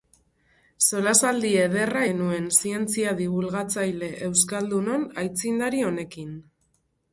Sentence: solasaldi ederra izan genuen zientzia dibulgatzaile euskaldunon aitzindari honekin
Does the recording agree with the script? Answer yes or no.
no